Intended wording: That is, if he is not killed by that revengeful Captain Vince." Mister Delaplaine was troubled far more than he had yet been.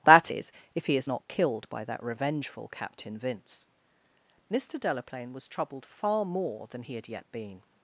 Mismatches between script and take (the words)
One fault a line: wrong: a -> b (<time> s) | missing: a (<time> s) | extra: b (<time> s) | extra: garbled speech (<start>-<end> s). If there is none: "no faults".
no faults